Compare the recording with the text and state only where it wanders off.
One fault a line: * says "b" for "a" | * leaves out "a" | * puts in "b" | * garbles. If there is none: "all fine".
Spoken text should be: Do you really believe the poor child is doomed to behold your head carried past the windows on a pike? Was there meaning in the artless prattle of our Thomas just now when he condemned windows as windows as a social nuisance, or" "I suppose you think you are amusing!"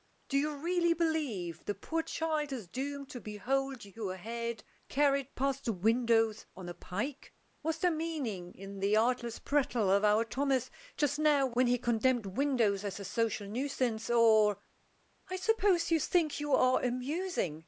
* leaves out "windows as"